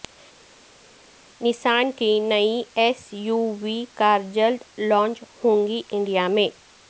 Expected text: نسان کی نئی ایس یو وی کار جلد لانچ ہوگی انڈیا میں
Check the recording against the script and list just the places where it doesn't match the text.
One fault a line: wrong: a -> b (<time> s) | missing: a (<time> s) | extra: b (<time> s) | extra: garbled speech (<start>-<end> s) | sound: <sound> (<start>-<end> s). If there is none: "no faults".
no faults